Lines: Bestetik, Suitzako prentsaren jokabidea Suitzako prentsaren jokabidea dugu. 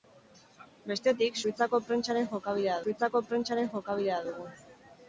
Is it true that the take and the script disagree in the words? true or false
false